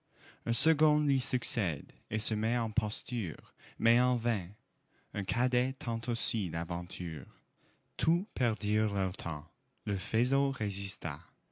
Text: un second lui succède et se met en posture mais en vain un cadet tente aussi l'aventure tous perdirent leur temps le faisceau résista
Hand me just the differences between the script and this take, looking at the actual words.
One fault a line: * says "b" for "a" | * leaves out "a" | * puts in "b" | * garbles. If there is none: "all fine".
all fine